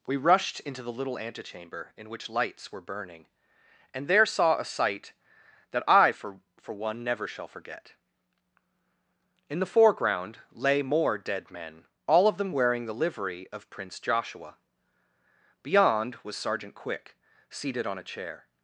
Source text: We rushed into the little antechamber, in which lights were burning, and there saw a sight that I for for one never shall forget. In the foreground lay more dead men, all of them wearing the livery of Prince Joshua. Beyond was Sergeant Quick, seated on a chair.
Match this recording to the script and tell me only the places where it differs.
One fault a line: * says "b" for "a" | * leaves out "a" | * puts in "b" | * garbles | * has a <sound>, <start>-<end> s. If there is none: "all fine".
all fine